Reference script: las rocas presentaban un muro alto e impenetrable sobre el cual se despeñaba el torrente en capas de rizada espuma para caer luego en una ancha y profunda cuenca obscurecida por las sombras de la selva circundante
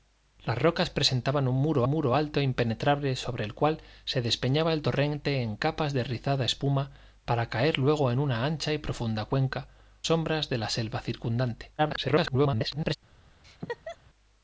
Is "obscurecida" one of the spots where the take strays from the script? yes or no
yes